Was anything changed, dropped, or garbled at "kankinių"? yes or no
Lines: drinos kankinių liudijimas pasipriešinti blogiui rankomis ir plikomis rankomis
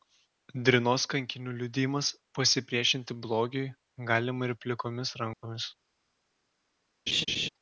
no